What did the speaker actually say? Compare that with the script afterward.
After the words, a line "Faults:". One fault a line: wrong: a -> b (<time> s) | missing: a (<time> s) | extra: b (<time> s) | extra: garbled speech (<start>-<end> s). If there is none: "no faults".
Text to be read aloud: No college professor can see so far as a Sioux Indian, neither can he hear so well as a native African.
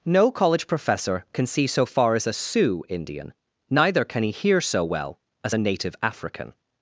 No college professor can see so far as a Sioux Indian, neither can he hear so well as a native African.
Faults:
no faults